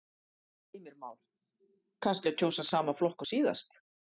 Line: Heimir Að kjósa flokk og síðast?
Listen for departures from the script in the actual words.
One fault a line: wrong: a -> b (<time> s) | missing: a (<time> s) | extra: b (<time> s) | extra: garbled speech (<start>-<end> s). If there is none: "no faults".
extra: Már Kannski (1.0 s)
extra: sama (2.7 s)